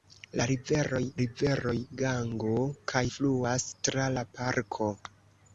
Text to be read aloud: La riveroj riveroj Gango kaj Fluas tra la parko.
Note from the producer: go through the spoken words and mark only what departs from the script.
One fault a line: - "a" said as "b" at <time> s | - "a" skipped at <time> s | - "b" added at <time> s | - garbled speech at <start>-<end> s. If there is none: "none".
none